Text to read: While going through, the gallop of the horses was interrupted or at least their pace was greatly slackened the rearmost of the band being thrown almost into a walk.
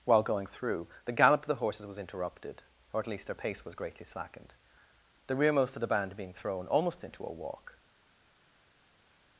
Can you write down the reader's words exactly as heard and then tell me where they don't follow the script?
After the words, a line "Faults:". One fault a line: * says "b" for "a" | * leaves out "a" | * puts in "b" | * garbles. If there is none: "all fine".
While going through, the gallop of the horses was interrupted or at least their pace was greatly slackened the rearmost of the band being thrown almost into a walk.
Faults:
all fine